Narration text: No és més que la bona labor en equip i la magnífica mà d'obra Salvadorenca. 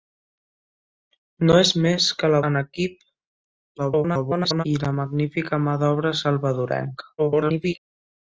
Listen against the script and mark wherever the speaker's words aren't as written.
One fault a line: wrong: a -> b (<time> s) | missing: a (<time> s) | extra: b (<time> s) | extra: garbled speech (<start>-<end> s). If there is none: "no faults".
missing: bona labor (2.4 s)
extra: garbled speech (3.8-4.6 s)
extra: garbled speech (7.2-7.8 s)